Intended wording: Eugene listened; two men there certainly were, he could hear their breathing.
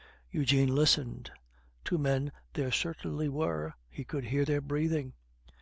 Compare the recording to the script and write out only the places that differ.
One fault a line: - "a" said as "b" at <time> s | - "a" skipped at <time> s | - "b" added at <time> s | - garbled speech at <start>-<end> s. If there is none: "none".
none